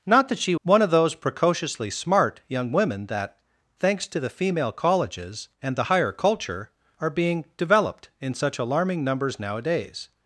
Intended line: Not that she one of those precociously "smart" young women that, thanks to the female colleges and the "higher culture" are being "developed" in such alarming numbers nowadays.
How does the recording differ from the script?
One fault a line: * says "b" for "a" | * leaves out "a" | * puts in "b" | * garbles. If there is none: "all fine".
all fine